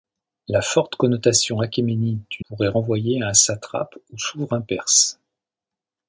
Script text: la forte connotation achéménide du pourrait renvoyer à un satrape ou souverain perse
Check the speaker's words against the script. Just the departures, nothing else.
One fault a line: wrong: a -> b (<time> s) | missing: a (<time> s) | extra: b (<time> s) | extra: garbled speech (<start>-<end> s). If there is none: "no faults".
no faults